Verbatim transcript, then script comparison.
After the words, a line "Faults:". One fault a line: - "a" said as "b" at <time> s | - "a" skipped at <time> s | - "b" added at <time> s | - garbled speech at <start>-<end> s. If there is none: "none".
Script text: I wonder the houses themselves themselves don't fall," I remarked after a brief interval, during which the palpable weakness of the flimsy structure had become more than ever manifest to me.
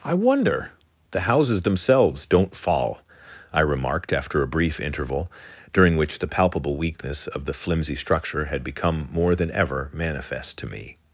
I wonder the houses themselves don't fall," I remarked after a brief interval, during which the palpable weakness of the flimsy structure had become more than ever manifest to me.
Faults:
- "themselves" skipped at 2.3 s